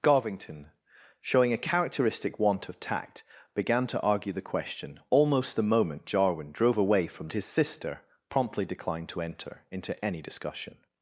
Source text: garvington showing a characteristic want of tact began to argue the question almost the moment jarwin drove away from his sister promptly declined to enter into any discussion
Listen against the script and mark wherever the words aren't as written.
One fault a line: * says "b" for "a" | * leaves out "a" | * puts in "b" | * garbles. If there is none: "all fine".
all fine